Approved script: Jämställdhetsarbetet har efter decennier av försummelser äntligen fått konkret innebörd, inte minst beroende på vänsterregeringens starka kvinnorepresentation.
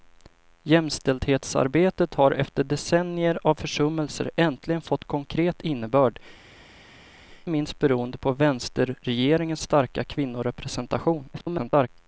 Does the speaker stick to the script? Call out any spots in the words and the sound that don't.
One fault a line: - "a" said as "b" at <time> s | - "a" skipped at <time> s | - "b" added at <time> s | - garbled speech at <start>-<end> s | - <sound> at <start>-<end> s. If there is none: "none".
- "inte" skipped at 6.2 s
- garbled speech at 11.3-11.9 s